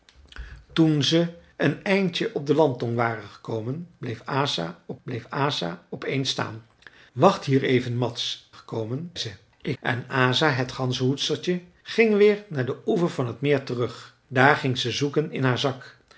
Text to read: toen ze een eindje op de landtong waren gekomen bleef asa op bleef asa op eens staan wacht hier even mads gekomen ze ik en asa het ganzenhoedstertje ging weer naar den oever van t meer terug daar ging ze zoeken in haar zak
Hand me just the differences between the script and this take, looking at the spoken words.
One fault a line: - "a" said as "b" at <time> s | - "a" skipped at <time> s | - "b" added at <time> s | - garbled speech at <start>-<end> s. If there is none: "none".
none